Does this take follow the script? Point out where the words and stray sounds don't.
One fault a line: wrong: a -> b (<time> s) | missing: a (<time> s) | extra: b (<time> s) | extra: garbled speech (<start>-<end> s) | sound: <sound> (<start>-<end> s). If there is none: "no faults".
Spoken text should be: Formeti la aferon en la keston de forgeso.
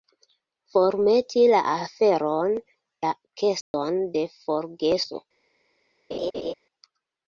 missing: en (2.5 s)
sound: dropout (3.6-3.7 s)
sound: laugh (6.1-6.5 s)